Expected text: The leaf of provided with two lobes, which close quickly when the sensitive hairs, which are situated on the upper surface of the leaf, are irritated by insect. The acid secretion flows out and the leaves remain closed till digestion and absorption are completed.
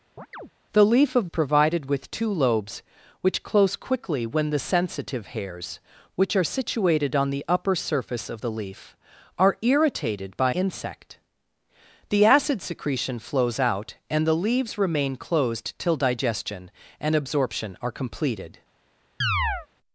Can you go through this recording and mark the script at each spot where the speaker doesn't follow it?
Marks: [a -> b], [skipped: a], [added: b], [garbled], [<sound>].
[chirp] The leaf of provided with two lobes, which close quickly when the sensitive hairs, which are situated on the upper surface of the leaf, are irritated by insect. The acid secretion flows out and the leaves remain closed till digestion and absorption are completed. [chirp]